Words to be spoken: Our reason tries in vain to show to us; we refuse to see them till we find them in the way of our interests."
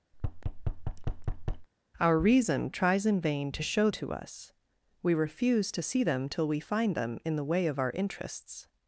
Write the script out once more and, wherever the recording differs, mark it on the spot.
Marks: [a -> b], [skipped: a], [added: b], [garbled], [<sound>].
[thud] Our reason tries in vain to show to us; we refuse to see them till we find them in the way of our interests."